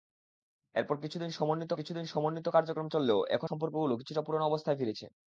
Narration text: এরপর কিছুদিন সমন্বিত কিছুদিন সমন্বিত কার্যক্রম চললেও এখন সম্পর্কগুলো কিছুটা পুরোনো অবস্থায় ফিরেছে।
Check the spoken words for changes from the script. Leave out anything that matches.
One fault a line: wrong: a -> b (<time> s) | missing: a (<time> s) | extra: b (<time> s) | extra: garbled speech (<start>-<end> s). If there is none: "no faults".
no faults